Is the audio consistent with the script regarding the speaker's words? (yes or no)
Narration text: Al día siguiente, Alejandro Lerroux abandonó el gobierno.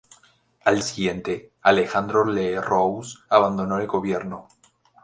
no